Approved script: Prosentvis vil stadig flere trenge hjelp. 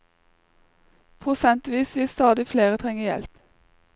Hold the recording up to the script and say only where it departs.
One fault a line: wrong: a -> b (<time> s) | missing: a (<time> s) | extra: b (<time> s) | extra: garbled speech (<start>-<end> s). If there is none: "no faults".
no faults